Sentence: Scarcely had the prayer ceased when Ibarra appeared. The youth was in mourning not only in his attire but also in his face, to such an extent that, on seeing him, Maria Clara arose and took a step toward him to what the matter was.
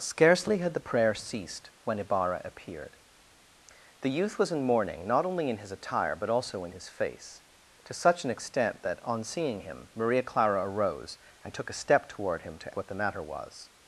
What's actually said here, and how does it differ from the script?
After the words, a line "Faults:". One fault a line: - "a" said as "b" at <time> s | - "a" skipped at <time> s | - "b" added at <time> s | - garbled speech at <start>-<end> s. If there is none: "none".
Scarcely had the prayer ceased when Ibarra appeared. The youth was in mourning not only in his attire but also in his face, to such an extent that, on seeing him, Maria Clara arose and took a step toward him to what the matter was.
Faults:
none